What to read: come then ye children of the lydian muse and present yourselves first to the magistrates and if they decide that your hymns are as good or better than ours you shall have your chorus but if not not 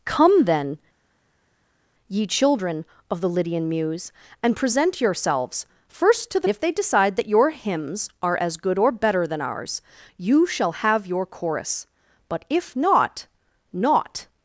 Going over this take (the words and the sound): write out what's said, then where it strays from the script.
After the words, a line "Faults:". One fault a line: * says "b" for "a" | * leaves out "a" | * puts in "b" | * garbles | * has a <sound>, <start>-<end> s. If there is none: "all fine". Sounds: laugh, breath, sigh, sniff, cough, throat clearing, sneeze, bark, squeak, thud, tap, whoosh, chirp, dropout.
come then ye children of the lydian muse and present yourselves first to the if they decide that your hymns are as good or better than ours you shall have your chorus but if not not
Faults:
* leaves out "magistrates and"